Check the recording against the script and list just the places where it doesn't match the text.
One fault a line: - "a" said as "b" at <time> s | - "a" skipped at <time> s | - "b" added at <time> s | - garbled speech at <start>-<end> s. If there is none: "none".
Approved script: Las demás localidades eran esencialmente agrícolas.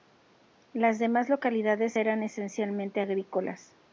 none